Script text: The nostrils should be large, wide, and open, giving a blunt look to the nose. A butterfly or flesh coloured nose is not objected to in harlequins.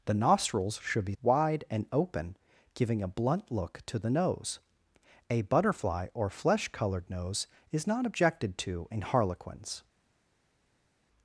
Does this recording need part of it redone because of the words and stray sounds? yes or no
yes